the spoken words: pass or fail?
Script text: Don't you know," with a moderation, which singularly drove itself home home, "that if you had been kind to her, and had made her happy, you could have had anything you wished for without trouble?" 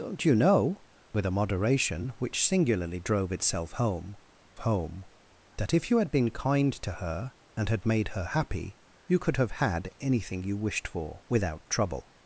pass